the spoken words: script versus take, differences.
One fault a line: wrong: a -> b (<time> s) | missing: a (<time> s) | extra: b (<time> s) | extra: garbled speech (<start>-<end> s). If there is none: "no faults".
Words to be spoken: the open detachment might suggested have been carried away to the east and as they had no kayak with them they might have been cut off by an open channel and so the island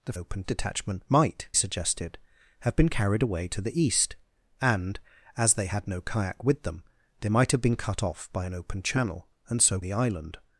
no faults